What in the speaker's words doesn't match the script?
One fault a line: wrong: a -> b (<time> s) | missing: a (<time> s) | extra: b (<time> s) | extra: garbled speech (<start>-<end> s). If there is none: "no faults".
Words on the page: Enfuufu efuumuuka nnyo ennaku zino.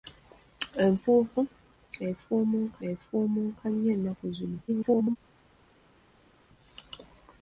extra: efuumuuka (2.9 s)
extra: garbled speech (4.7-5.2 s)